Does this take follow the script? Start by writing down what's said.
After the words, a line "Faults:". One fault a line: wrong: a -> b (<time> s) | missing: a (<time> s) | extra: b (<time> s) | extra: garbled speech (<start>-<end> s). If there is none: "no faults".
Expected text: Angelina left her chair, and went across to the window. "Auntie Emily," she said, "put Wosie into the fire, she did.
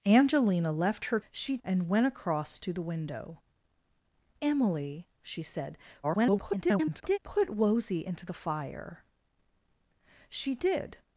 Angelina left her she, and went across to the window. "Emily," she said, [garbled] "put Wosie into the fire, she did.
Faults:
wrong: chair -> she (1.3 s)
missing: Auntie (3.4 s)
extra: garbled speech (6.0-7.2 s)